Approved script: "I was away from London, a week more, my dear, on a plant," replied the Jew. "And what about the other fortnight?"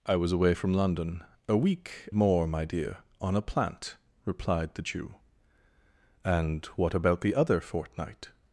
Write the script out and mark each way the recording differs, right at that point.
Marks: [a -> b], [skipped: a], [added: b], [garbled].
"I was away from London, a week more, my dear, on a plant," replied the Jew. "And what about the other fortnight?"